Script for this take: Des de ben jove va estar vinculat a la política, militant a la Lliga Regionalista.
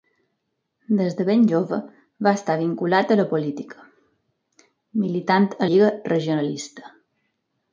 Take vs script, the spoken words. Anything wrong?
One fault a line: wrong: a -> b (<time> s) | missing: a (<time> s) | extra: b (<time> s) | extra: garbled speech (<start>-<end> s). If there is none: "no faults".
missing: la (5.7 s)